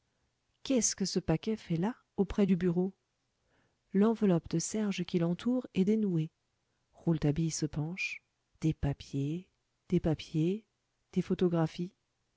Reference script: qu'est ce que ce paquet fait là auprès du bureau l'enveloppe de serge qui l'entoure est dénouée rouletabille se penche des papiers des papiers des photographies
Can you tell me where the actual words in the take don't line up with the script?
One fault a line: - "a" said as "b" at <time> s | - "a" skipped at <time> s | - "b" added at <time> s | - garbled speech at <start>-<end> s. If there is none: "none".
none